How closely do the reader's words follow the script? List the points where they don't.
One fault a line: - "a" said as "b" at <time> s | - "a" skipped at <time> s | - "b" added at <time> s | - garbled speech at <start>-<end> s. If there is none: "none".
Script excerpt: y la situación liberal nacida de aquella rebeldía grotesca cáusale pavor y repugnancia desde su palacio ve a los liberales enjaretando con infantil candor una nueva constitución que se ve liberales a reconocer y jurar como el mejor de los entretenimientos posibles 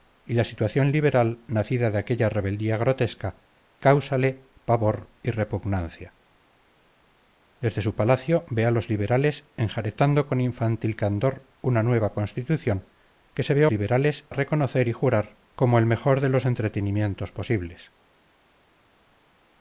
none